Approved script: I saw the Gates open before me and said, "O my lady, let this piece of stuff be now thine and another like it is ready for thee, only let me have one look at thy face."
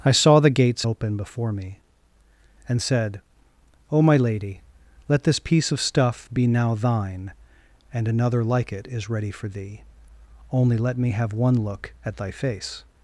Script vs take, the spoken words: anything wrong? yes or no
no